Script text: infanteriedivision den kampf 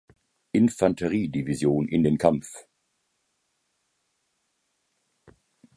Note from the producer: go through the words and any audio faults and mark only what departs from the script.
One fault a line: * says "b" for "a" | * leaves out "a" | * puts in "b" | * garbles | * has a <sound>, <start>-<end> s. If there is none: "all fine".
* puts in "in"